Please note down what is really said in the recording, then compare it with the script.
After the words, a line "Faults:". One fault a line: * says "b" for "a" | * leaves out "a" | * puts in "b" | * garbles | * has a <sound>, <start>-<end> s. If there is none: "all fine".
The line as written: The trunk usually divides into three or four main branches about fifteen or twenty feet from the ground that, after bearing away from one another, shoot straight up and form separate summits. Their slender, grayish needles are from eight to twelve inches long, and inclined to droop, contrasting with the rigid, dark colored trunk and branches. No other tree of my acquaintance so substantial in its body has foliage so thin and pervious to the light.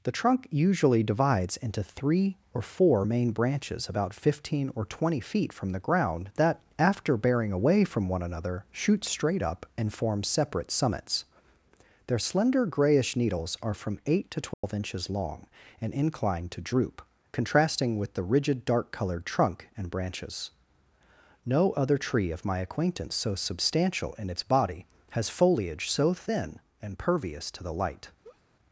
The trunk usually divides into three or four main branches about fifteen or twenty feet from the ground that, after bearing away from one another, shoot straight up and form separate summits. Their slender, grayish needles are from eight to twelve inches long, and inclined to droop, contrasting with the rigid, dark colored trunk and branches. No other tree of my acquaintance so substantial in its body has foliage so thin and pervious to the light.
Faults:
* has a dropout, 14.5-14.6 s
* has a laugh, 28.2-28.4 s